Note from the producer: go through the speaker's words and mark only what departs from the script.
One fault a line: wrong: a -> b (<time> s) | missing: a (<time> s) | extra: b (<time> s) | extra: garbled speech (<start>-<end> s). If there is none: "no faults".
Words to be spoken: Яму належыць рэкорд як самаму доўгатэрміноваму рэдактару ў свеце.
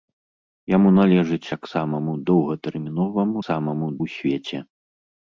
missing: рэкорд (1.5 s)
wrong: рэдактару -> самаму (3.5 s)